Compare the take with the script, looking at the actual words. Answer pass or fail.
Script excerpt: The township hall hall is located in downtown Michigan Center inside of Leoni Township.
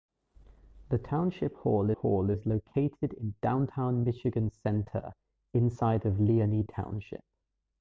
pass